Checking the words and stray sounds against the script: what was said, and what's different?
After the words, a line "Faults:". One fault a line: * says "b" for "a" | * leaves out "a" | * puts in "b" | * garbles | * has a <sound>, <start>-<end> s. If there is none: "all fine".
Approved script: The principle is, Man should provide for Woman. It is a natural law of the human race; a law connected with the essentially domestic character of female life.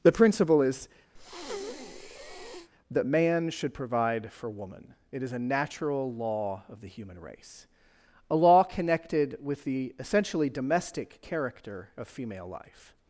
The principle is, that Man should provide for Woman. It is a natural law of the human race; a law connected with the essentially domestic character of female life.
Faults:
* has a breath, 1.2-2.7 s
* puts in "that"